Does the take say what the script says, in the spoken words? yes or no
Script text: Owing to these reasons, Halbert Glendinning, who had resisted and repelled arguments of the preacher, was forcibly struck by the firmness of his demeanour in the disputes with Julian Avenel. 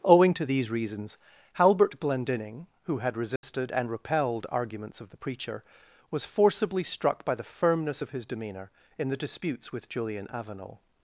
yes